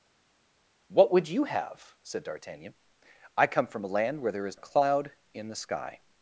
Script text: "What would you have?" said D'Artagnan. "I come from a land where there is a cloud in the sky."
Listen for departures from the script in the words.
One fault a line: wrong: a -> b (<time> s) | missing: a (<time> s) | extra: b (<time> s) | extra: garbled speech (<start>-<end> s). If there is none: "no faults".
no faults